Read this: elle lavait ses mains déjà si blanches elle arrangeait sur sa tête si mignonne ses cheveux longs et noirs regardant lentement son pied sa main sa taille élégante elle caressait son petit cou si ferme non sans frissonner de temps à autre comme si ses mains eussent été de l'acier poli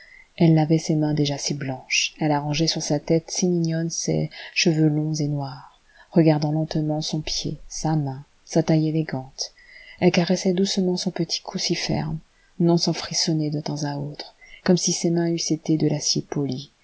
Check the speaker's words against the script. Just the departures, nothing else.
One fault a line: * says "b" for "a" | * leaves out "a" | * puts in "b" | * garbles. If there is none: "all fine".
* puts in "doucement"